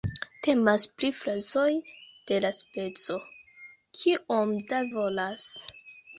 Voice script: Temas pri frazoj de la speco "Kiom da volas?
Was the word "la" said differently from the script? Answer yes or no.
no